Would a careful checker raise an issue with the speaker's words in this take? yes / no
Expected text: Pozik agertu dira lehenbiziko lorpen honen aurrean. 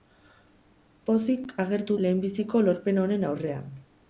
yes